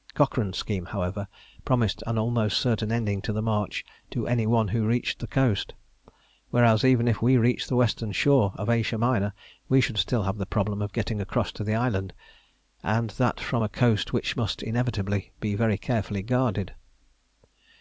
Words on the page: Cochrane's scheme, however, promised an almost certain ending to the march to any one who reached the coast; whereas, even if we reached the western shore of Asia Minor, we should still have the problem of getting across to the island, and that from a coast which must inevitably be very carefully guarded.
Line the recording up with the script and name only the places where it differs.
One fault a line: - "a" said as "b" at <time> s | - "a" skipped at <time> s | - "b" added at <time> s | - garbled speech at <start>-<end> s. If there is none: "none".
none